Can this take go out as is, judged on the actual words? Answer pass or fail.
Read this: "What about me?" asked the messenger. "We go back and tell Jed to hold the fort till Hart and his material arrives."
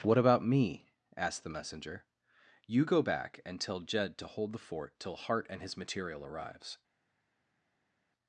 fail